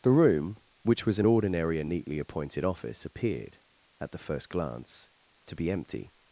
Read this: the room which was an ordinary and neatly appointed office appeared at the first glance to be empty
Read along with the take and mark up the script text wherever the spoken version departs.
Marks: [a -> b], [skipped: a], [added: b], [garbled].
the room which was an ordinary and neatly appointed office appeared at the first glance to be empty